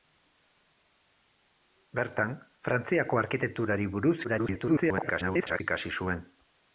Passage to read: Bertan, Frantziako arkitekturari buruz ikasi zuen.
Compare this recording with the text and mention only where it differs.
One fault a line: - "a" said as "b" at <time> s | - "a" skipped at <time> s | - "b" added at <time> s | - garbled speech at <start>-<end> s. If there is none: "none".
- garbled speech at 4.2-5.6 s